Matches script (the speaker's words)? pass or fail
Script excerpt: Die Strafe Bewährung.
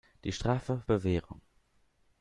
pass